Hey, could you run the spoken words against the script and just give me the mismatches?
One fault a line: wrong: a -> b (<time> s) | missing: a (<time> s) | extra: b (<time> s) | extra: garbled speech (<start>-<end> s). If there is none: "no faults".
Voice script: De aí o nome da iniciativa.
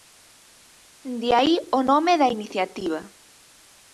no faults